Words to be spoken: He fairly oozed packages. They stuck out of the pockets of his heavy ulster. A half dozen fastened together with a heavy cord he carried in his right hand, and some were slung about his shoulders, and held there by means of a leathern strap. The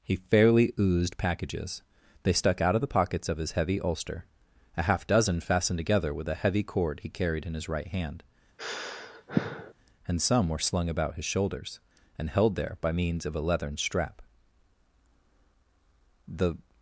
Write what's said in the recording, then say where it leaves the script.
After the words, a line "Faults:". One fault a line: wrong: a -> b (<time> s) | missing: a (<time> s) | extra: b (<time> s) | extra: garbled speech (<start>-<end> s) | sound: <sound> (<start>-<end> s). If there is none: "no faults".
He fairly oozed packages. They stuck out of the pockets of his heavy ulster. A half dozen fastened together with a heavy cord he carried in his right hand, and some were slung about his shoulders, and held there by means of a leathern strap. The
Faults:
sound: sigh (8.6-9.7 s)